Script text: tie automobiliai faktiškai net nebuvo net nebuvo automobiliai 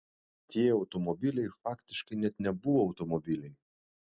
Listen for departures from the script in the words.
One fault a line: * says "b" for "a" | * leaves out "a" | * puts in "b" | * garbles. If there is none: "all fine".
* leaves out "net nebuvo"